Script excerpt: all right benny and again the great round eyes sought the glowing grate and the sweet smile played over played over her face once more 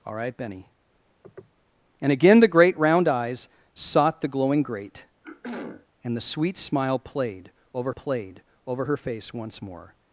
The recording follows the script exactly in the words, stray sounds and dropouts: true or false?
false